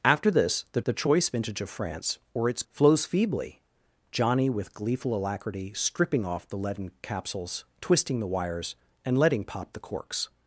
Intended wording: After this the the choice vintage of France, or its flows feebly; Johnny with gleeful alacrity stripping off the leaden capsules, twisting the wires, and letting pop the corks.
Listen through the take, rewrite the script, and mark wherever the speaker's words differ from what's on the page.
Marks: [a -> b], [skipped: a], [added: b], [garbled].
After this the the choice vintage of France, or its flows feebly; Johnny with gleeful alacrity stripping off the leaden capsules, twisting the wires, and letting pop the corks.